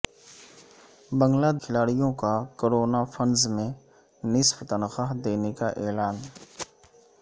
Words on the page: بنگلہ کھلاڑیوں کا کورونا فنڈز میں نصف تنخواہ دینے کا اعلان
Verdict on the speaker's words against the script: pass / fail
pass